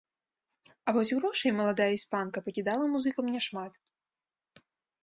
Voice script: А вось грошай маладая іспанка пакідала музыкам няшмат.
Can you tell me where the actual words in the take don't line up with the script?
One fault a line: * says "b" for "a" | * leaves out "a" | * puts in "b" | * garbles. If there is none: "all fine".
all fine